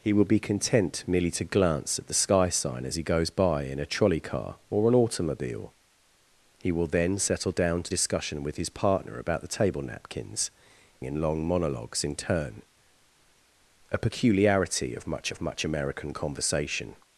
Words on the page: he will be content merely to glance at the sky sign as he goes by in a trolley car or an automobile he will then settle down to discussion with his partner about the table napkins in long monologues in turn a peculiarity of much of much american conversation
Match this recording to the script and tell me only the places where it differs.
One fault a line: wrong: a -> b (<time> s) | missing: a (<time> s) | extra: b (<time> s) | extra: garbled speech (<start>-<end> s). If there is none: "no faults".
no faults